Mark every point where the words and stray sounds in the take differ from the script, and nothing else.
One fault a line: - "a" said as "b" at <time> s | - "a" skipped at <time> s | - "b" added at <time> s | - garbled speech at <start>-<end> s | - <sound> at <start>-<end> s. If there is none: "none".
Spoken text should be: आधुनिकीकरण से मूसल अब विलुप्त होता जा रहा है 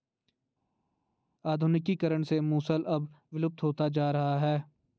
none